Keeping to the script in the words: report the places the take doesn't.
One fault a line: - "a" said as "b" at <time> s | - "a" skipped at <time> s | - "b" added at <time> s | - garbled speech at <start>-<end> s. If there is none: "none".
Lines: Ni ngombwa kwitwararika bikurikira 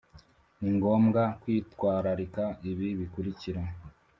- "ibi" added at 2.7 s